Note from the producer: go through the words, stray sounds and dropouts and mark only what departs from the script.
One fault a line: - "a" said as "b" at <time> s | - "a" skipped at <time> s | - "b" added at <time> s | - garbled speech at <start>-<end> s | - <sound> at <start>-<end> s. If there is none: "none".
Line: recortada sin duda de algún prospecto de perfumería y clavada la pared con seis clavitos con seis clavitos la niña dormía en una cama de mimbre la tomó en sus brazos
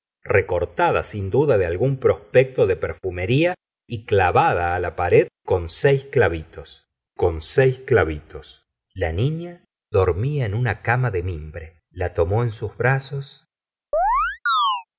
- chirp at 13.9-14.8 s